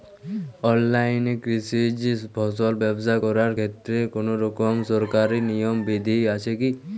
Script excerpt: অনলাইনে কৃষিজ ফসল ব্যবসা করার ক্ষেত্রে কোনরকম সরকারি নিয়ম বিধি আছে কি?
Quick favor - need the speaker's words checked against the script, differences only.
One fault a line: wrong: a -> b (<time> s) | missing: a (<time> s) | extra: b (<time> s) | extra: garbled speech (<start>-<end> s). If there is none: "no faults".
no faults